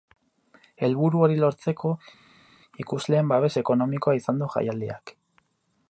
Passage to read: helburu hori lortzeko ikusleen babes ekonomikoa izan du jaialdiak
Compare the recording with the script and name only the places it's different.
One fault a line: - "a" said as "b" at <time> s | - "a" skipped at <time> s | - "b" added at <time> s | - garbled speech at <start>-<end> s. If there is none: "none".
none